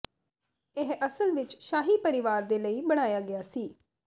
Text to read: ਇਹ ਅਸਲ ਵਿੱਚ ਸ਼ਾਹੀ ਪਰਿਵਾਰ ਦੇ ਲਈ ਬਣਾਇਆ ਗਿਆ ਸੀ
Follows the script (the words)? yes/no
yes